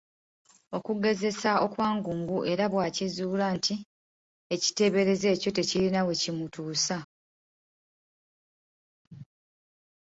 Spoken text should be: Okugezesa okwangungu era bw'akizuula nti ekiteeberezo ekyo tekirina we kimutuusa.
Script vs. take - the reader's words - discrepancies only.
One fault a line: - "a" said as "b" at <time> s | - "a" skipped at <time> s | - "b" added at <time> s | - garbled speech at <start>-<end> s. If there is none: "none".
none